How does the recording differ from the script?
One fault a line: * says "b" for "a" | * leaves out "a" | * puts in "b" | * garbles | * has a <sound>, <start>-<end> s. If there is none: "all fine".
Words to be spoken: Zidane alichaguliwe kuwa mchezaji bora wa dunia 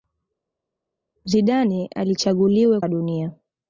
* leaves out "kuwa mchezaji bora"